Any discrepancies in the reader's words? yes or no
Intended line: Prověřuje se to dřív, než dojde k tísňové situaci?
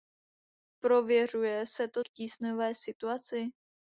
yes